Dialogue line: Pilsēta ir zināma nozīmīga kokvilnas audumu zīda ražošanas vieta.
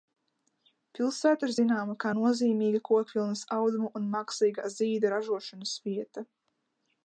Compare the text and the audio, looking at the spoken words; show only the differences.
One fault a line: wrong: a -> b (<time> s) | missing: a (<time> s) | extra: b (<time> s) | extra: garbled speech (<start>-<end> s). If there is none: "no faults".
extra: kā (2.0 s)
extra: un mākslīgā (4.0 s)